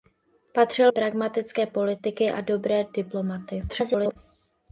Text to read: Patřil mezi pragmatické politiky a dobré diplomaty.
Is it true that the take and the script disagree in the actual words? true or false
true